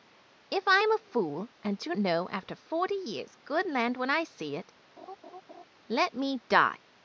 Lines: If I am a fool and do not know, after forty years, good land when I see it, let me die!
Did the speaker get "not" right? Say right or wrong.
wrong